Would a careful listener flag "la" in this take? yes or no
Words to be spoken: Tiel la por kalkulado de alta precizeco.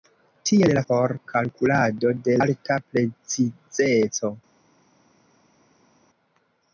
no